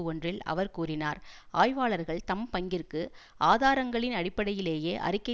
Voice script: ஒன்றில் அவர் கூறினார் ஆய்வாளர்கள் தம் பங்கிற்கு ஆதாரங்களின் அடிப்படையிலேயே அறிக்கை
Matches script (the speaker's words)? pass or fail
pass